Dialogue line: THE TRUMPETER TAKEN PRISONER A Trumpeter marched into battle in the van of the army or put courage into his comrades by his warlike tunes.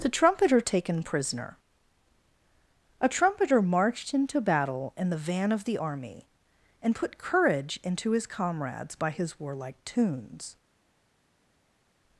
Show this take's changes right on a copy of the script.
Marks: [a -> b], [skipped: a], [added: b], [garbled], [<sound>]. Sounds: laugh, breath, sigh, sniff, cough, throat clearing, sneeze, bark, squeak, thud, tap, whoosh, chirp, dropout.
THE TRUMPETER TAKEN PRISONER A Trumpeter marched into battle in the van of the army [or -> and] put courage into his comrades by his warlike tunes.